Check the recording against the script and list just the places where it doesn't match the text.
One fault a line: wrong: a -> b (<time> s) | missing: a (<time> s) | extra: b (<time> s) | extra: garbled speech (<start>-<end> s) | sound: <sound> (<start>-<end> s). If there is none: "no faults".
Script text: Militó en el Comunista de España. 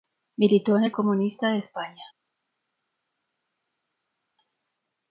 no faults